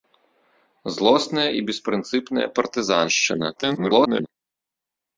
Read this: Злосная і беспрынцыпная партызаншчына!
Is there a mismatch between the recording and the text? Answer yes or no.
yes